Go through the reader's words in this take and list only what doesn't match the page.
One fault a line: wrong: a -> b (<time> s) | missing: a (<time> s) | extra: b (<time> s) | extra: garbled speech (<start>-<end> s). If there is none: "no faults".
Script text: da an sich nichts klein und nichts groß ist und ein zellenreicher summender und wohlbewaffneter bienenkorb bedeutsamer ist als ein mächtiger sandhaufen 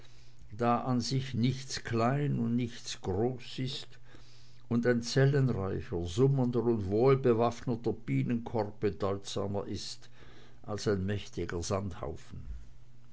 no faults